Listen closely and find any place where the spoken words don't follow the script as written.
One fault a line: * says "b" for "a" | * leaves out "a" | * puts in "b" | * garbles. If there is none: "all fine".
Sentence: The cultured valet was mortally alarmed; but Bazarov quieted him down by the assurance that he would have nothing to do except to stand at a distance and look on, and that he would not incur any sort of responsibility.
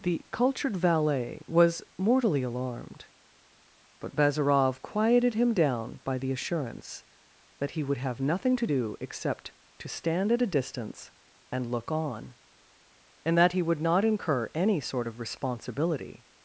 all fine